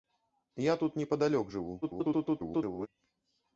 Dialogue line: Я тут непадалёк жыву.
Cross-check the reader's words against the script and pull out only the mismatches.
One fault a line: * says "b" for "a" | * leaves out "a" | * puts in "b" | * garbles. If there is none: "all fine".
* garbles